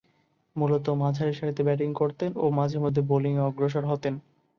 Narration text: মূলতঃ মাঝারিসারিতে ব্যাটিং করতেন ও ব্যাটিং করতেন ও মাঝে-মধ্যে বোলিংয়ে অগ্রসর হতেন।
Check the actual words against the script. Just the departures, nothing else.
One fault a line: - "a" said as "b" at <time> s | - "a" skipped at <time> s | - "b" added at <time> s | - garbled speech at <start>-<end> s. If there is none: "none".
- "ব্যাটিং করতেন ও" skipped at 2.5 s